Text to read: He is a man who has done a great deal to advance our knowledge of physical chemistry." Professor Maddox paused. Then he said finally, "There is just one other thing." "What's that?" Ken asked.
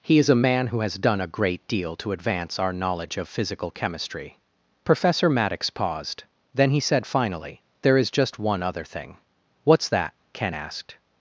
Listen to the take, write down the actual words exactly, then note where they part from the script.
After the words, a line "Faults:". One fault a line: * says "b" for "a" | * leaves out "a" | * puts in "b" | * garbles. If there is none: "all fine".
He is a man who has done a great deal to advance our knowledge of physical chemistry." Professor Maddox paused. Then he said finally, "There is just one other thing." "What's that?" Ken asked.
Faults:
all fine